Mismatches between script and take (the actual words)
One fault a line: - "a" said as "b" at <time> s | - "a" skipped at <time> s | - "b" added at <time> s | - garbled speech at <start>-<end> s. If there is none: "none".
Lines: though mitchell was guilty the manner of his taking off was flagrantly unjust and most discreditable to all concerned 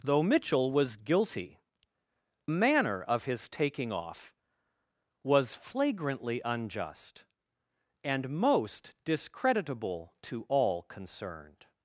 - "the" skipped at 1.6 s